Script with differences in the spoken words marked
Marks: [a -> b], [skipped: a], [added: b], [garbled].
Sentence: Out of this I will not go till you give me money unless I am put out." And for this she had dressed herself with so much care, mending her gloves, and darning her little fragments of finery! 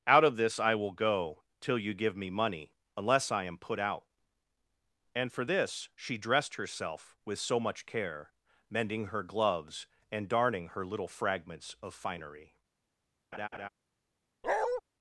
Out of this I will [skipped: not] go till you give me money unless I am put out." And for this she [skipped: had] dressed herself with so much care, mending her gloves, and darning her little fragments of finery!